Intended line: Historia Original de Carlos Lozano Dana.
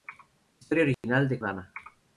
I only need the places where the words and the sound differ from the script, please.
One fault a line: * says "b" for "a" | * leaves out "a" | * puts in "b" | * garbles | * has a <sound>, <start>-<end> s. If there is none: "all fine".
* has a dropout, 0.9-1.0 s
* leaves out "Carlos Lozano"